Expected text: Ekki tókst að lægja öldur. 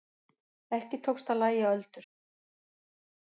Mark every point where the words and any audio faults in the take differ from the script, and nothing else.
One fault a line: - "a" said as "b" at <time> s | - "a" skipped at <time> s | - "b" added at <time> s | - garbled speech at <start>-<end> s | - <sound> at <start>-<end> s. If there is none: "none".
none